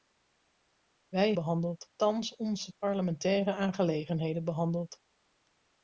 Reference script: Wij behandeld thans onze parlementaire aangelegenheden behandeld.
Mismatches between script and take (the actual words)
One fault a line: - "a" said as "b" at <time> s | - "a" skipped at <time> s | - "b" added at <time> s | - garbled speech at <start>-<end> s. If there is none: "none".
none